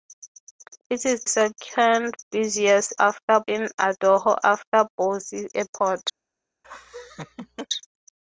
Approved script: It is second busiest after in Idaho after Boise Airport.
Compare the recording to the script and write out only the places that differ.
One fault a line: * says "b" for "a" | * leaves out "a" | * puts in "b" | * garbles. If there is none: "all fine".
all fine